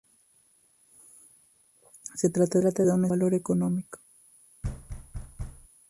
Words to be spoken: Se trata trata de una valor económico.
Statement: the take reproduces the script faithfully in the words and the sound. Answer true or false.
false